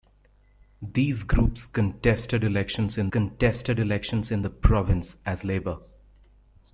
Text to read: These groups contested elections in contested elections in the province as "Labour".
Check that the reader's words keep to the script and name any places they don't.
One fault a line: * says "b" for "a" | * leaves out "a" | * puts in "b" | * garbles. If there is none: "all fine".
all fine